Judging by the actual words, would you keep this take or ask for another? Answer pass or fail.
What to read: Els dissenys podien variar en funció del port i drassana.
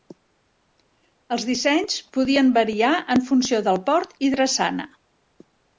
pass